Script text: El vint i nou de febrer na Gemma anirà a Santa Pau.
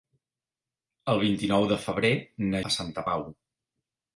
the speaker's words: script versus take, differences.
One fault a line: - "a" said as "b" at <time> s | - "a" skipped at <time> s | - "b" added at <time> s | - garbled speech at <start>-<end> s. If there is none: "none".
- "Gemma anirà" skipped at 2.6 s